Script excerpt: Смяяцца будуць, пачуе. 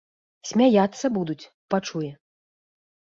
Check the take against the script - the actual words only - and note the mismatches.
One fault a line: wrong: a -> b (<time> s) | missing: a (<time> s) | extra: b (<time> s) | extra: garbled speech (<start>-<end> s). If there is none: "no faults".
no faults